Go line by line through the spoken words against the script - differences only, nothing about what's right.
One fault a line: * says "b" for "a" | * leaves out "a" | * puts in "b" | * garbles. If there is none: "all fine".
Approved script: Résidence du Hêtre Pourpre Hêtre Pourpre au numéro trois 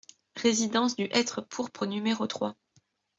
* leaves out "Hêtre Pourpre"